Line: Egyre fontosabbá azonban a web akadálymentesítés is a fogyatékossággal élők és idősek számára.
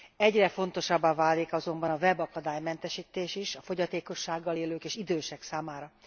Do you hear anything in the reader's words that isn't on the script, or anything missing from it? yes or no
yes